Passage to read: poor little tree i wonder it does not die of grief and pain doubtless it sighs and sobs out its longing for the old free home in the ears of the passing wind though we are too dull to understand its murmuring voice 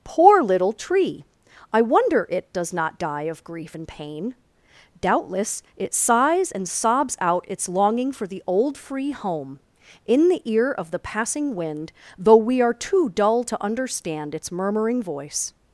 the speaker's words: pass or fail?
fail